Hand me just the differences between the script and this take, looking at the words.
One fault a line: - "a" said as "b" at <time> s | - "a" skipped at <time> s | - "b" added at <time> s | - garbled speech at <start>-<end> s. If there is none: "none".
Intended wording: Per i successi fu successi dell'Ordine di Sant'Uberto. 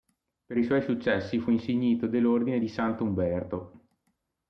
- "suoi" added at 0.6 s
- "successi" said as "insignito" at 1.5 s